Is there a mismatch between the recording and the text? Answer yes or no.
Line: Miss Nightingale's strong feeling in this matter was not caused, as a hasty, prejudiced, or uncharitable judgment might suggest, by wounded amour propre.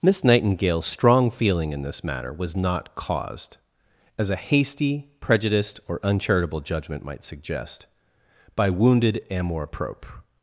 no